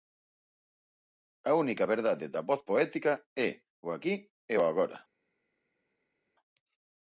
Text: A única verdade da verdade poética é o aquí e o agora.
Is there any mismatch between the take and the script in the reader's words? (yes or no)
yes